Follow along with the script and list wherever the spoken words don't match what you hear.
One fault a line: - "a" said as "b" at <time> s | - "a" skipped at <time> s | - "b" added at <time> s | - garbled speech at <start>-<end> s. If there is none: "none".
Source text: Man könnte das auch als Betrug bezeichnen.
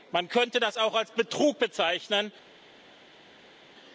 none